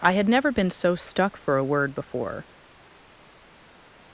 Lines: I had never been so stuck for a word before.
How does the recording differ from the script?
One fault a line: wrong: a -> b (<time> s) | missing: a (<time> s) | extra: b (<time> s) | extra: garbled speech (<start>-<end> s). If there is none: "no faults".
no faults